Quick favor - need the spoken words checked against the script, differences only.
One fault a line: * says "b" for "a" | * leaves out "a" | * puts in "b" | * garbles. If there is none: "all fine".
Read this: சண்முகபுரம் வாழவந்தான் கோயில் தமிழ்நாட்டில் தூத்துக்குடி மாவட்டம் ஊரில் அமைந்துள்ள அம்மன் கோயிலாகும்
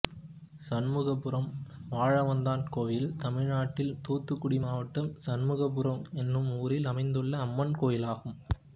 * puts in "சண்முகபுரம் என்னும்"